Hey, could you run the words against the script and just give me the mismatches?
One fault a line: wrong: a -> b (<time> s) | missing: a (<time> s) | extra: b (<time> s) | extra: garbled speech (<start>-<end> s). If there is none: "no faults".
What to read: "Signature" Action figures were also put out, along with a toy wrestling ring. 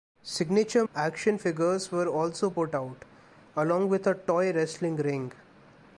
no faults